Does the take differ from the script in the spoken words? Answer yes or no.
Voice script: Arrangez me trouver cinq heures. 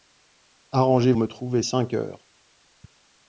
no